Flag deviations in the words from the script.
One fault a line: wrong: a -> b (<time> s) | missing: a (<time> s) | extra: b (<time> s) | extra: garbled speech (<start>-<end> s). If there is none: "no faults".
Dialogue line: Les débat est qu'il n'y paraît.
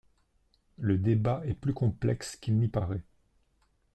wrong: Les -> Le (0.8 s)
extra: plus complexe (1.5 s)